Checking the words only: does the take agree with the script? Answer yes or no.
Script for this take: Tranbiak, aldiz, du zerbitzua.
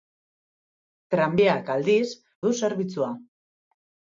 yes